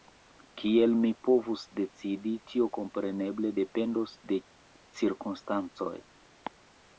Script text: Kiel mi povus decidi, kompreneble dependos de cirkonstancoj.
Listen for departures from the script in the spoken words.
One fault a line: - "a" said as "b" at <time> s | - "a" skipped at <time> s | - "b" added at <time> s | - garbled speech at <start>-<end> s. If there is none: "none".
- "tio" added at 2.5 s